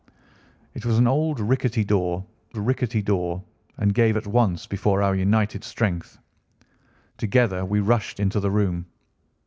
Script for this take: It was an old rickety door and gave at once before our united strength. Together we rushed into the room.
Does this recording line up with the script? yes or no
no